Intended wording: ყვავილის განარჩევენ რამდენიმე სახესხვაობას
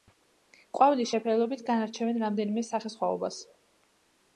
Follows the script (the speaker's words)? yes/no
no